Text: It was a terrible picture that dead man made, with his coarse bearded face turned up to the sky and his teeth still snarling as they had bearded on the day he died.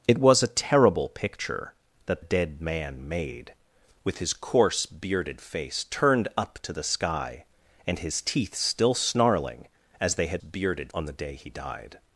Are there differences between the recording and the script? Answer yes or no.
no